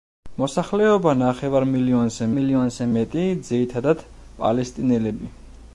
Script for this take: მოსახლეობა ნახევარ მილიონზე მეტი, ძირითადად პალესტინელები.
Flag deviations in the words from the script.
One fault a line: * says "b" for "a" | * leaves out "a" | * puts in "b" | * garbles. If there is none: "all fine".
* puts in "მილიონზე"